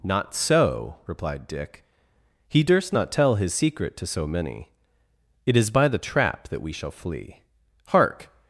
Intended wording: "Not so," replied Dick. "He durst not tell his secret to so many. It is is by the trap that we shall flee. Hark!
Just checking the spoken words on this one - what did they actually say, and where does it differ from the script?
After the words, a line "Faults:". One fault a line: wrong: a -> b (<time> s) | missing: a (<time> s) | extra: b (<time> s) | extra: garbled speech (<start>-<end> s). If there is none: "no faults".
"Not so," replied Dick. "He durst not tell his secret to so many. It is by the trap that we shall flee. Hark!
Faults:
missing: is (5.7 s)